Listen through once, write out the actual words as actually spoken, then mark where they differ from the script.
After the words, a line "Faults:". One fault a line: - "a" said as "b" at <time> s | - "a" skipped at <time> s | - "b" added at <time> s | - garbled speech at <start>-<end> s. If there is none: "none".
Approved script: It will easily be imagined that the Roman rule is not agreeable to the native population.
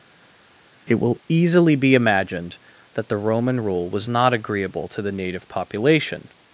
It will easily be imagined that the Roman rule was not agreeable to the native population.
Faults:
- "is" said as "was" at 3.9 s